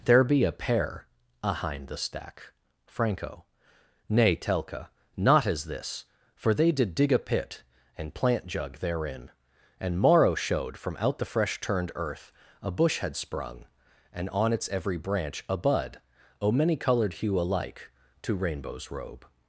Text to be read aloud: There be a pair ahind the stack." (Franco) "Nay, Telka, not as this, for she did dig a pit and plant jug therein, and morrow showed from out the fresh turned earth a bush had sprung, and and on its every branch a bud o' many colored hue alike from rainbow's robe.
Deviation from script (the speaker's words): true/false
true